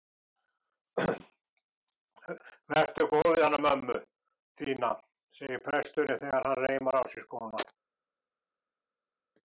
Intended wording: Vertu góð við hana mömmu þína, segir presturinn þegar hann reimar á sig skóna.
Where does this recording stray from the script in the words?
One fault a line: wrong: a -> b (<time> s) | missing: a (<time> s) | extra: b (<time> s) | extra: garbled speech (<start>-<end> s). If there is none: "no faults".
no faults